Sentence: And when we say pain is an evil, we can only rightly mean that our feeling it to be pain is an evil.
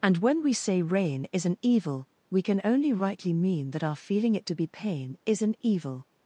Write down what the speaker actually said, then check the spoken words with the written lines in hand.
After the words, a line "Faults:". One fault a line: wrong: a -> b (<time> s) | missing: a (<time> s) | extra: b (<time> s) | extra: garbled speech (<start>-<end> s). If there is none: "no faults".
And when we say rain is an evil, we can only rightly mean that our feeling it to be pain is an evil.
Faults:
wrong: pain -> rain (0.8 s)